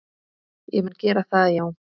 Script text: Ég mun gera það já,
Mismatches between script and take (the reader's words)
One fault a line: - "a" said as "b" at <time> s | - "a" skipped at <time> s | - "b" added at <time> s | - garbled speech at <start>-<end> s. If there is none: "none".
none